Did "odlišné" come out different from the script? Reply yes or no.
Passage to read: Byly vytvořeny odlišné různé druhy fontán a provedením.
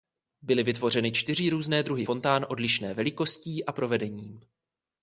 yes